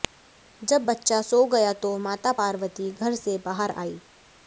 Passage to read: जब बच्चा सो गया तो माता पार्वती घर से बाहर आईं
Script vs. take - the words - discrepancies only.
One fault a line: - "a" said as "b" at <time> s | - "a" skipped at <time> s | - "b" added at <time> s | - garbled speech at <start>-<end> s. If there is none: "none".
none